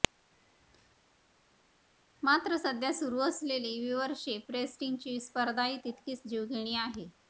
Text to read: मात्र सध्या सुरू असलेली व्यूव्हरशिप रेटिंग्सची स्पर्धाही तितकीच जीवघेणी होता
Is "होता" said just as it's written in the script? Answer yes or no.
no